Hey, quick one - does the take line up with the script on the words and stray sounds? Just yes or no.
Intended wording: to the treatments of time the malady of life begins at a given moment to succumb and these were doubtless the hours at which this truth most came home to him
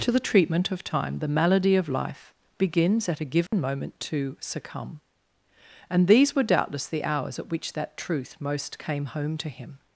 no